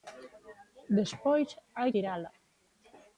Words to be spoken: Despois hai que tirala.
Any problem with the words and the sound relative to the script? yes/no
yes